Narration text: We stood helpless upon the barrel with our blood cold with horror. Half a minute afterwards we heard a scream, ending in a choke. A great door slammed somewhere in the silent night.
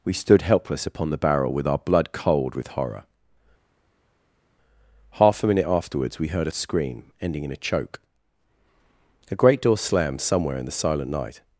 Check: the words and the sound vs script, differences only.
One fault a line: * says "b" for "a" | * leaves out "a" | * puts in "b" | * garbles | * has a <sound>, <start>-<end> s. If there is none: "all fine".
all fine